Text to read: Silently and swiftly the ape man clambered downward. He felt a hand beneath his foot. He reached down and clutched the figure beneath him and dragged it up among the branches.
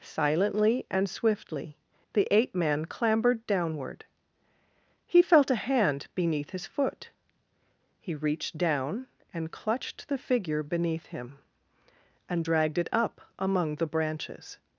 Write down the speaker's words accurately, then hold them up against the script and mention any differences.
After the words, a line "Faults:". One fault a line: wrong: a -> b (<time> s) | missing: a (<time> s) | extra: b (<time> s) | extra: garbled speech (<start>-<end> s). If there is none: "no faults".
Silently and swiftly the ape man clambered downward. He felt a hand beneath his foot. He reached down and clutched the figure beneath him and dragged it up among the branches.
Faults:
no faults